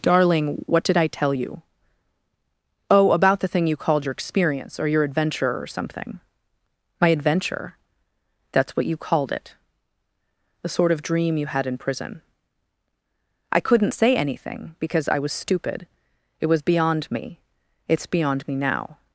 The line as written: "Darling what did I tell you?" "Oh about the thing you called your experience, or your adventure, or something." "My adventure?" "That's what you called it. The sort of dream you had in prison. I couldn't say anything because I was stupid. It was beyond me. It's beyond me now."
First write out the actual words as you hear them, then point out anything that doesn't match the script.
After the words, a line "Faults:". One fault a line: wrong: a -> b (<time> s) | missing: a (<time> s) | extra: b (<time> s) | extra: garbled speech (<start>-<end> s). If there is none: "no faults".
"Darling what did I tell you?" "Oh about the thing you called your experience, or your adventure, or something." "My adventure?" "That's what you called it. The sort of dream you had in prison. I couldn't say anything because I was stupid. It was beyond me. It's beyond me now."
Faults:
no faults